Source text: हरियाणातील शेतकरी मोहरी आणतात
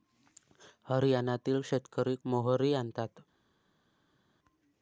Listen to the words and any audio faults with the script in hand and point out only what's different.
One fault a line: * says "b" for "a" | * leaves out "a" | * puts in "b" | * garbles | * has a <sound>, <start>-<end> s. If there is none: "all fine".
all fine